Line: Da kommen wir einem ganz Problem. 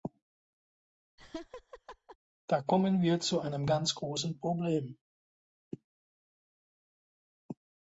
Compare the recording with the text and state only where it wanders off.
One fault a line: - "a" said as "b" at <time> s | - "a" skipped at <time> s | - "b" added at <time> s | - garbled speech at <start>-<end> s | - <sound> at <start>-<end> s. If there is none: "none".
- laugh at 1.2-2.2 s
- "zu" added at 3.2 s
- "großen" added at 3.9 s